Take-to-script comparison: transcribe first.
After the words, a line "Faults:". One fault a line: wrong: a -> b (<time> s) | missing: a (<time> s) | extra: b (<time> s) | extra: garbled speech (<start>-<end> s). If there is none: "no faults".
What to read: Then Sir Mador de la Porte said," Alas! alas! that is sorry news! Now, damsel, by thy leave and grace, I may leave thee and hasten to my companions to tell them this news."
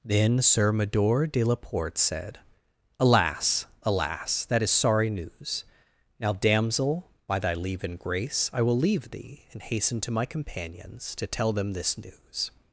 Then Sir Mador de la Porte said," Alas! alas! that is sorry news! Now, damsel, by thy leave and grace, I will leave thee and hasten to my companions to tell them this news."
Faults:
wrong: may -> will (8.6 s)